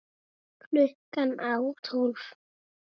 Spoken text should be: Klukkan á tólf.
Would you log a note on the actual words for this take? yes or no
no